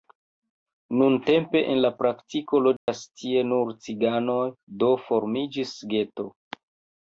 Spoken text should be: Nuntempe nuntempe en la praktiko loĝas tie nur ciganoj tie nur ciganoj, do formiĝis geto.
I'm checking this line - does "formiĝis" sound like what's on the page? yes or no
yes